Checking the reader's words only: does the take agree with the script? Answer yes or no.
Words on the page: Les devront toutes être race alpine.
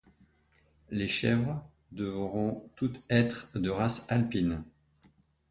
no